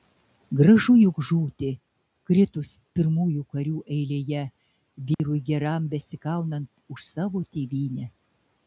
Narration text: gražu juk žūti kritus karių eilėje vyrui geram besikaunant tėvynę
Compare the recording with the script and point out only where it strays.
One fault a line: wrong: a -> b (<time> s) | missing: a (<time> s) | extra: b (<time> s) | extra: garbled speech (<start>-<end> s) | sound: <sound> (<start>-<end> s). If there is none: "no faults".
extra: pirmųjų (3.0 s)
sound: dropout (5.1-5.2 s)
extra: už savo (6.9 s)